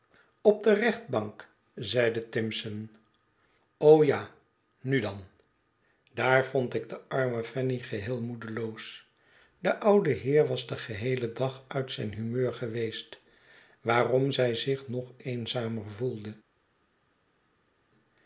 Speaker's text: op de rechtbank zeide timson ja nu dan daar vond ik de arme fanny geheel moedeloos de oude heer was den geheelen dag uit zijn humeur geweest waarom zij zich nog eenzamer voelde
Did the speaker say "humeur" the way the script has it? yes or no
yes